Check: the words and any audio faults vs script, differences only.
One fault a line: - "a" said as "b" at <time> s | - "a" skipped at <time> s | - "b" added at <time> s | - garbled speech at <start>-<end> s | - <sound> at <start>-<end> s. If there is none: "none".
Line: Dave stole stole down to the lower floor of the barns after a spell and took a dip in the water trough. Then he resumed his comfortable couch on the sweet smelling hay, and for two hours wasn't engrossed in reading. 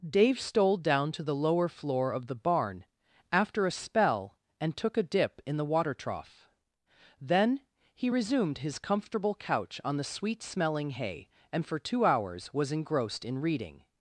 - "stole" skipped at 0.8 s
- "barns" said as "barn" at 2.3 s
- "wasn't" said as "was" at 12.5 s